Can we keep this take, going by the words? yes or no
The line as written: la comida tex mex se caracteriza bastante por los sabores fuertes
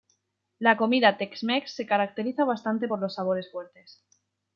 yes